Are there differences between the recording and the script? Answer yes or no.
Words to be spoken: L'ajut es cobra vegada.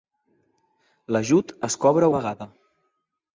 no